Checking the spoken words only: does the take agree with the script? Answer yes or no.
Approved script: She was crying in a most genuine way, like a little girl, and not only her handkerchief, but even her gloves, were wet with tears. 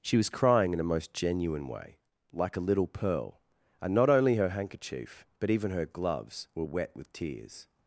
no